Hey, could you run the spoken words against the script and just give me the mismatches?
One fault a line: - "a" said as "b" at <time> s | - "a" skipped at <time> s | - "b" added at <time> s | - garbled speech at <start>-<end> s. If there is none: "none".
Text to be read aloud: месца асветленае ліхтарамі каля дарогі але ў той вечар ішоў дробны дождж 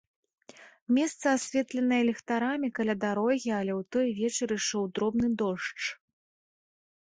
none